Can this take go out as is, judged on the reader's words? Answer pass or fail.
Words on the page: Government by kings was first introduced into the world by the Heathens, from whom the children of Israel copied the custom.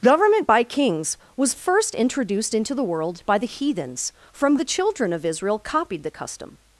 fail